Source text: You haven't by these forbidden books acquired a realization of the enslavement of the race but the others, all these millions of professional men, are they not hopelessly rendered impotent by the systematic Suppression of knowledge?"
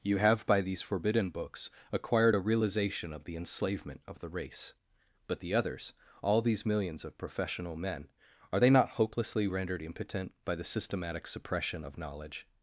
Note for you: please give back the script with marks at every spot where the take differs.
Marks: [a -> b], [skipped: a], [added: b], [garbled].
You [haven't -> have] by these forbidden books acquired a realization of the enslavement of the race but the others, all these millions of professional men, are they not hopelessly rendered impotent by the systematic Suppression of knowledge?"